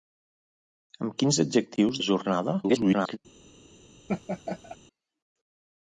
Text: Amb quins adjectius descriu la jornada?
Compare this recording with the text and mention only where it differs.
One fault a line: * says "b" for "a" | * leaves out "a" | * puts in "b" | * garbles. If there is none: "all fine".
* leaves out "descriu"
* garbles